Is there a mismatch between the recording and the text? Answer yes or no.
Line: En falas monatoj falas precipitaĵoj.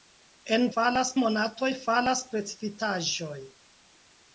no